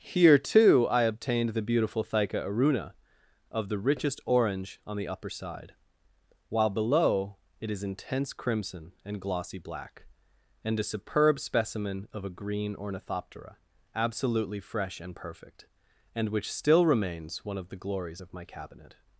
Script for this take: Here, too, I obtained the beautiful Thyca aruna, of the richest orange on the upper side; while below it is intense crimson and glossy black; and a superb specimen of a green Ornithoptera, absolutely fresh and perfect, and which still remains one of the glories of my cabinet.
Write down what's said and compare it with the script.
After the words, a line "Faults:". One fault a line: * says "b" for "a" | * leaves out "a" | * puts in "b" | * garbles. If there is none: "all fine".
Here, too, I obtained the beautiful Thyca aruna, of the richest orange on the upper side; while below it is intense crimson and glossy black; and a superb specimen of a green Ornithoptera, absolutely fresh and perfect, and which still remains one of the glories of my cabinet.
Faults:
all fine